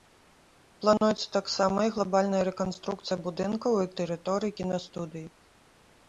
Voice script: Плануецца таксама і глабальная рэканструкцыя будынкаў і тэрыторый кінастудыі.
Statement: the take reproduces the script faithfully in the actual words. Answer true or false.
true